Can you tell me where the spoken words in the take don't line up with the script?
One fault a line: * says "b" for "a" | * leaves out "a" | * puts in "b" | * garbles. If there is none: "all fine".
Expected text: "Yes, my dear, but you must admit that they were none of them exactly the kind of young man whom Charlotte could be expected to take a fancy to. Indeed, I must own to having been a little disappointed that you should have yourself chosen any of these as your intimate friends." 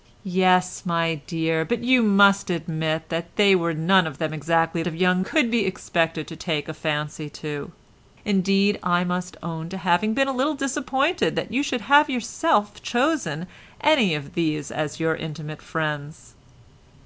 * leaves out "the kind"
* leaves out "man whom Charlotte"